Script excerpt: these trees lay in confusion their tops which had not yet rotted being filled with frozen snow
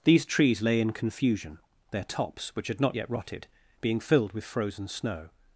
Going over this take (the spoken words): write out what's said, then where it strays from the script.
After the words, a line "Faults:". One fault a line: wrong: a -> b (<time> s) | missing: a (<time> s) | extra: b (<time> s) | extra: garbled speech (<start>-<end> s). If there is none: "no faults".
these trees lay in confusion their tops which had not yet rotted being filled with frozen snow
Faults:
no faults